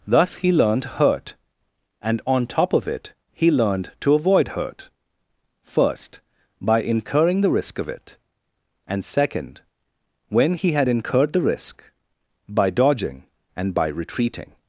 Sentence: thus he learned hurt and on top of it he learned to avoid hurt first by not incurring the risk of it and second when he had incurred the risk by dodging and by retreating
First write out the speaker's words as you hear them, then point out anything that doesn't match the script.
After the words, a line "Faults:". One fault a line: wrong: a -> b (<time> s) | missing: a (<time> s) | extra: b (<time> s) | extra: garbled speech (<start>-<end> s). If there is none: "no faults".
thus he learned hurt and on top of it he learned to avoid hurt first by incurring the risk of it and second when he had incurred the risk by dodging and by retreating
Faults:
missing: not (6.8 s)